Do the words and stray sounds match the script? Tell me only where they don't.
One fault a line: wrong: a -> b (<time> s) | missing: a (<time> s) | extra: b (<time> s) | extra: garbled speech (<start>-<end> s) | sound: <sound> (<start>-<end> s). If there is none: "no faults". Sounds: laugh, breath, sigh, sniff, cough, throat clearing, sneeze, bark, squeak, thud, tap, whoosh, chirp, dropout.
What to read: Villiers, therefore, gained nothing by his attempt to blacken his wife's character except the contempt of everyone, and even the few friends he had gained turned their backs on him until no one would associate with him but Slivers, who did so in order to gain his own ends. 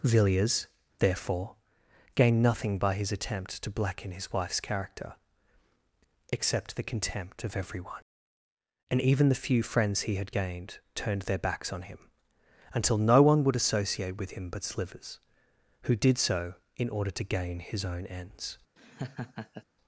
sound: laugh (18.8-19.6 s)